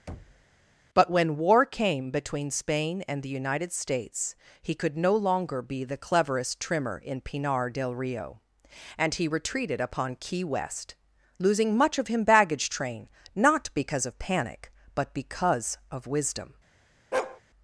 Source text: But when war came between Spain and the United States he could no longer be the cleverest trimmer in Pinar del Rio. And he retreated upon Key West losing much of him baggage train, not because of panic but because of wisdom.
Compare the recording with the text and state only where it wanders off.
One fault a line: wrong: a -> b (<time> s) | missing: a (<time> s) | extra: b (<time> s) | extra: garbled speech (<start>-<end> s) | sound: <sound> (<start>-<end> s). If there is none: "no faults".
sound: thud (0.1-0.4 s)
sound: bark (17.1-17.4 s)